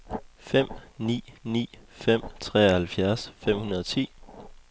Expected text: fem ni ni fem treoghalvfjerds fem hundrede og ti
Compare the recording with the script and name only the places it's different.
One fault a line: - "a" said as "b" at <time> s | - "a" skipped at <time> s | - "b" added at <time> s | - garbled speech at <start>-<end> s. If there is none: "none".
none